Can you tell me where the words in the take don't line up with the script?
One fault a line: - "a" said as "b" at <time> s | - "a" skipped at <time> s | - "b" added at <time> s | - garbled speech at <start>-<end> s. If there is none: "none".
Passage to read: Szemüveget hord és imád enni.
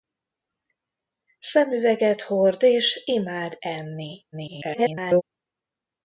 - garbled speech at 4.3-5.2 s